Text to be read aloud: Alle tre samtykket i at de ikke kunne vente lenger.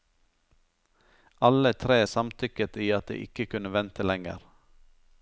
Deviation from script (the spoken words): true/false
false